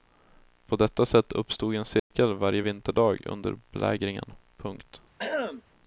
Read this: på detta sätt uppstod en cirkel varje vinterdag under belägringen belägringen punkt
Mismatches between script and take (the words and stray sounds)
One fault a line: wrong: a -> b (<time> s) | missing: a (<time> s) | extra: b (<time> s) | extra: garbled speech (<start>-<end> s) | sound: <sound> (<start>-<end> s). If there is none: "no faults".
sound: dropout (2.0-2.1 s)
missing: belägringen (4.3 s)
sound: throat clearing (5.2-5.6 s)